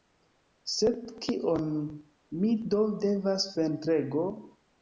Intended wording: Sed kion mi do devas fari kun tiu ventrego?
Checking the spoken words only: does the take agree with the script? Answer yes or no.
no